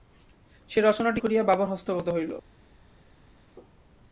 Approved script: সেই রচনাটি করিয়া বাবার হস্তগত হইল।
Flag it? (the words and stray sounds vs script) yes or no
no